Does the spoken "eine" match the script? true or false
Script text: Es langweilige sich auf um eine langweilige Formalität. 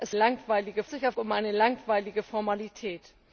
true